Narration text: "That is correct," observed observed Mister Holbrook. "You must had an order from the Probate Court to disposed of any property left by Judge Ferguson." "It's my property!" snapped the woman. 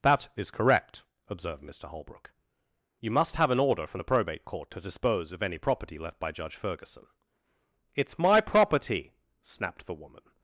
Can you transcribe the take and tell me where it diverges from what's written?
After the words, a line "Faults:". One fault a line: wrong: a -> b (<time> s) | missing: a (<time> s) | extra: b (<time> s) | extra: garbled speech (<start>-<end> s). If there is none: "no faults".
"That is correct," observed Mister Holbrook. "You must have an order from the Probate Court to dispose of any property left by Judge Ferguson." "It's my property!" snapped the woman.
Faults:
missing: observed (1.6 s)
wrong: had -> have (3.4 s)
wrong: disposed -> dispose (4.8 s)